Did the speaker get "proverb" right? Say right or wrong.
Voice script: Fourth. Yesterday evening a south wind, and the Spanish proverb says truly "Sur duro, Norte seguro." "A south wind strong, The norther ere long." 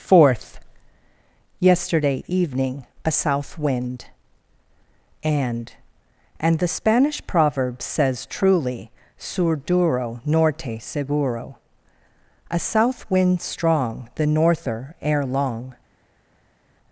right